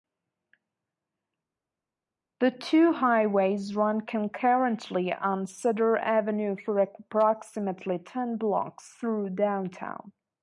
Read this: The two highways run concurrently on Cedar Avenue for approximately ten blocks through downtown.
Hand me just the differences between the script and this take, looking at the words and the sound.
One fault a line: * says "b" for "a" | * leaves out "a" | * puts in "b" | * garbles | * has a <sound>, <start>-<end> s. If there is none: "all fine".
all fine